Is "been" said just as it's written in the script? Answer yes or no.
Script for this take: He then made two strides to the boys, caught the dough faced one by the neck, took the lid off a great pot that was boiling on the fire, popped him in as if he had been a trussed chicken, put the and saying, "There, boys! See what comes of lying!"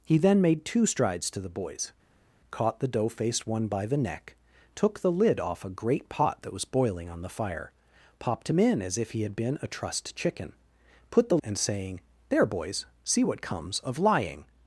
yes